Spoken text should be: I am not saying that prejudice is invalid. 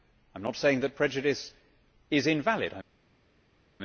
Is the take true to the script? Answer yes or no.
yes